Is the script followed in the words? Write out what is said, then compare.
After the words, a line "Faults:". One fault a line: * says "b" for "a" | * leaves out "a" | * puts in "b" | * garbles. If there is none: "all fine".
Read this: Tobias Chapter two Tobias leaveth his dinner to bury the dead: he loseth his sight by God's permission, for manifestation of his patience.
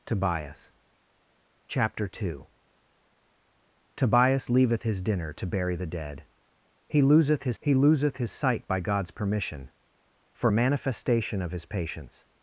Tobias Chapter two Tobias leaveth his dinner to bury the dead: he loseth his he loseth his sight by God's permission, for manifestation of his patience.
Faults:
* puts in "he loseth his"